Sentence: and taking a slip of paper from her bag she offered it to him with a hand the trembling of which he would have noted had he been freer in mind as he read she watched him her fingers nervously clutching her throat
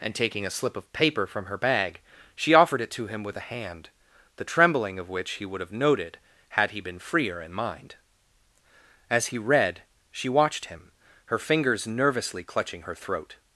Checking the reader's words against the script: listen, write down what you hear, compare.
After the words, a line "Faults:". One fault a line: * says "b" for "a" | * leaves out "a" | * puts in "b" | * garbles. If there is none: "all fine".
and taking a slip of paper from her bag she offered it to him with a hand the trembling of which he would have noted had he been freer in mind as he read she watched him her fingers nervously clutching her throat
Faults:
all fine